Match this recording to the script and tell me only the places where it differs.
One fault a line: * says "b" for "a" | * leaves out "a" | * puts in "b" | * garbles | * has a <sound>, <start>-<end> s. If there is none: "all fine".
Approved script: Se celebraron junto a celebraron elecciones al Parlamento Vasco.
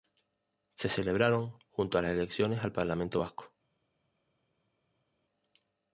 * says "las" for "celebraron"